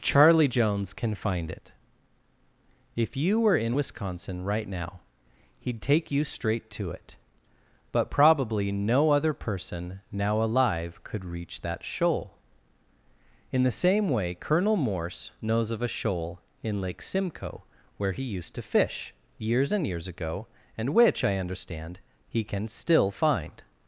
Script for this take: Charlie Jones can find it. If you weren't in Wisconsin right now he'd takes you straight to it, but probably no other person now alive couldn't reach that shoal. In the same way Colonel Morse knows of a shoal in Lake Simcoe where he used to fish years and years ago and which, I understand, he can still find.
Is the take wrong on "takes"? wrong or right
wrong